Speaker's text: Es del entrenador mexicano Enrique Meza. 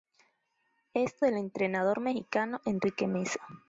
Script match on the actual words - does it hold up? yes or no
yes